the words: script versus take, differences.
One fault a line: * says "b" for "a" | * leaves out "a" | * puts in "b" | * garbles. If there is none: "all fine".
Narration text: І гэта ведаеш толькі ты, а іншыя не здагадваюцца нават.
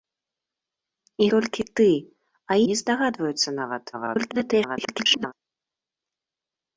* leaves out "гэта ведаеш"
* leaves out "іншыя"
* garbles